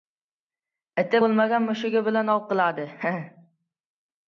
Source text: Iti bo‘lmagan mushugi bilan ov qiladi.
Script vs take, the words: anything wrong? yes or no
no